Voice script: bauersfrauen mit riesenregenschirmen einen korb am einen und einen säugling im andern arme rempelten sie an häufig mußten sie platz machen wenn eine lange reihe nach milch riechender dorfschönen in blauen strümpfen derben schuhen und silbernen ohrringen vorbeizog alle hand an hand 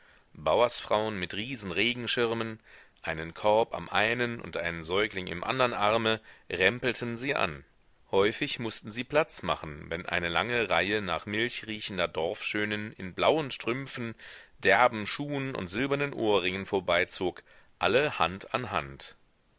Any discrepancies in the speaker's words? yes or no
no